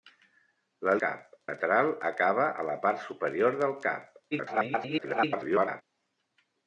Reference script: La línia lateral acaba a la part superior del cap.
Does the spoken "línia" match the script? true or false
false